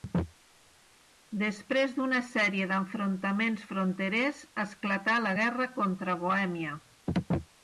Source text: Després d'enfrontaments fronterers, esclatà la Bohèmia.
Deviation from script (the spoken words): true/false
true